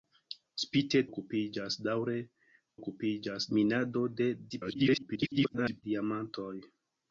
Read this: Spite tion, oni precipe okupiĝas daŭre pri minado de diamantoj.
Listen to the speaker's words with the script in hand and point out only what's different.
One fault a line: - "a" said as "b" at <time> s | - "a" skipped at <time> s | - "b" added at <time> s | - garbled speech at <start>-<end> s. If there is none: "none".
- "tion oni precipe" skipped at 1.0 s
- "pri" said as "okupiĝas" at 2.8 s
- garbled speech at 4.5-5.8 s